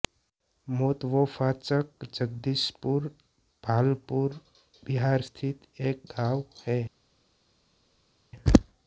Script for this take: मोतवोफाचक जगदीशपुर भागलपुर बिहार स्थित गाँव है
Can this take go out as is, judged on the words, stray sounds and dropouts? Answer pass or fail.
fail